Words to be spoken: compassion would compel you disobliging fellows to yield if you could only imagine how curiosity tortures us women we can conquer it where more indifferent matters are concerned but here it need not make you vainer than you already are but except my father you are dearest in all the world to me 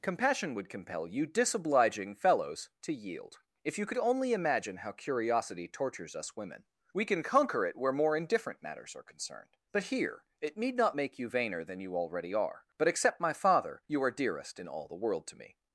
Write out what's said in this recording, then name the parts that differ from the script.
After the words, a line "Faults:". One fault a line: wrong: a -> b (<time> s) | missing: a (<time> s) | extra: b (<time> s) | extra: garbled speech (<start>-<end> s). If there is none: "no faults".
compassion would compel you disobliging fellows to yield if you could only imagine how curiosity tortures us women we can conquer it where more indifferent matters are concerned but here it need not make you vainer than you already are but except my father you are dearest in all the world to me
Faults:
no faults